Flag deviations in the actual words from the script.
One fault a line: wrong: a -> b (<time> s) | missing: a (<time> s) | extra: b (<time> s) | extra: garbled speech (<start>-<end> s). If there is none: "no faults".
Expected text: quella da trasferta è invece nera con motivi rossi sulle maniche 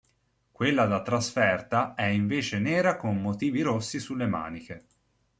no faults